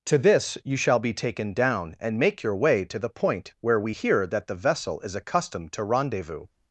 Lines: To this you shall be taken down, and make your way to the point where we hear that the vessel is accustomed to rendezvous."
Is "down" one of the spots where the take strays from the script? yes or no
no